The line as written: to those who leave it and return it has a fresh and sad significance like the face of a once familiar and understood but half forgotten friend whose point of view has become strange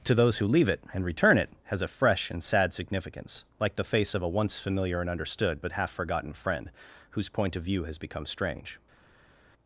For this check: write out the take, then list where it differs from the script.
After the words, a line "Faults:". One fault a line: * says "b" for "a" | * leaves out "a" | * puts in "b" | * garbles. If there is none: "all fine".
to those who leave it and return it has a fresh and sad significance like the face of a once familiar and understood but half forgotten friend whose point of view has become strange
Faults:
all fine